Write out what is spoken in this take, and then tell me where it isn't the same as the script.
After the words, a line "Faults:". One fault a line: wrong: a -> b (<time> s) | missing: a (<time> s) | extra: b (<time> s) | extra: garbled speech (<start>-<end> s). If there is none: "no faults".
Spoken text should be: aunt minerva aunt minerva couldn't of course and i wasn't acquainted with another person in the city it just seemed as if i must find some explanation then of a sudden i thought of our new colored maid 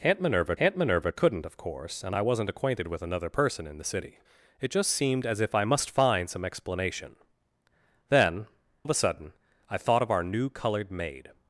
aunt minerva aunt minerva couldn't of course and i wasn't acquainted with another person in the city it just seemed as if i must find some explanation then of a sudden i thought of our new colored maid
Faults:
no faults